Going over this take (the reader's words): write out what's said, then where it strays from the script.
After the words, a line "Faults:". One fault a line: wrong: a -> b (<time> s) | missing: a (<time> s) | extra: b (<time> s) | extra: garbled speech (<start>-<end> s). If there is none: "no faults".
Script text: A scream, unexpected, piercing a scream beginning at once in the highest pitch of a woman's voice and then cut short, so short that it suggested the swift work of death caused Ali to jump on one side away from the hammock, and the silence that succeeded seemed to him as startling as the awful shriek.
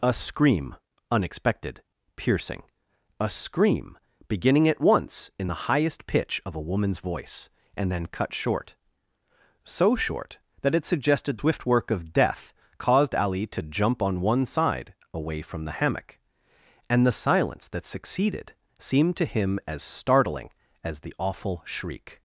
A scream, unexpected, piercing a scream beginning at once in the highest pitch of a woman's voice and then cut short, so short that it suggested swift work of death caused Ali to jump on one side away from the hammock, and the silence that succeeded seemed to him as startling as the awful shriek.
Faults:
missing: the (11.4 s)